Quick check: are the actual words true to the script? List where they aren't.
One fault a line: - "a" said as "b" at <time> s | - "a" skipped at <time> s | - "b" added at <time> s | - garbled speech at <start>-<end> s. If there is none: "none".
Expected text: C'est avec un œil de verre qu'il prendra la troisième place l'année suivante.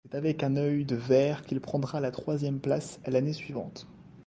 none